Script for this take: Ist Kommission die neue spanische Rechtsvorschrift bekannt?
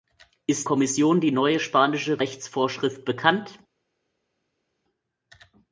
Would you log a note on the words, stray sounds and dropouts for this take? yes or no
no